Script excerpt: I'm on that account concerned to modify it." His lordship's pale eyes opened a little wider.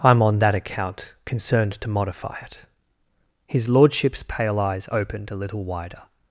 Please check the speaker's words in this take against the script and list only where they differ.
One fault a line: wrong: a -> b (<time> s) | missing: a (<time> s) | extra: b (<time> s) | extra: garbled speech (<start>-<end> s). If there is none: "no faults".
no faults